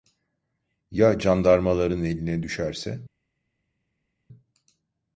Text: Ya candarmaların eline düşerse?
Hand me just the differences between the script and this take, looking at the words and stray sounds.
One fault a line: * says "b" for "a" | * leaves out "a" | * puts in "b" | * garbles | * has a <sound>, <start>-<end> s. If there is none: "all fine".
all fine